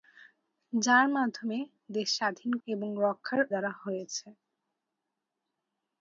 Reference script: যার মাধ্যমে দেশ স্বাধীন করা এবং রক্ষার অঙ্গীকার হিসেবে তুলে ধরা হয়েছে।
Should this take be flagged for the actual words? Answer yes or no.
yes